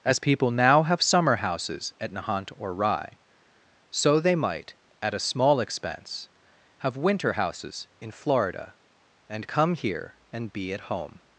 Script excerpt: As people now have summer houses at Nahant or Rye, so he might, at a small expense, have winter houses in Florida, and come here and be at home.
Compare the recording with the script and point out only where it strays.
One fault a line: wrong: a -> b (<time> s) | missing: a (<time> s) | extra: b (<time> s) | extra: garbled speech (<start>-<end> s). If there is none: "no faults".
wrong: he -> they (4.2 s)